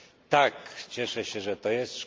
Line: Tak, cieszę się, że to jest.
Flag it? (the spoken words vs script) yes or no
no